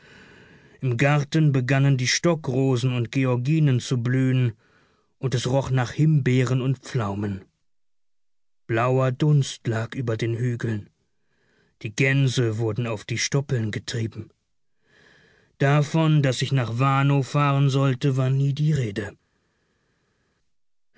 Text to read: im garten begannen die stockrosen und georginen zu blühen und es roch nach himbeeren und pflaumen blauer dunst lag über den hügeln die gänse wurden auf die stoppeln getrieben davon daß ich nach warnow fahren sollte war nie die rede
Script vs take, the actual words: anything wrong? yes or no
no